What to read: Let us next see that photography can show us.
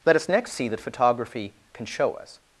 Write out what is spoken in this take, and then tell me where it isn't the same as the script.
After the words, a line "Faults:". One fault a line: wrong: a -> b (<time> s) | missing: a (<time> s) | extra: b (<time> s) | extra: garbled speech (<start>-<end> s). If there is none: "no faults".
Let us next see that photography can show us.
Faults:
no faults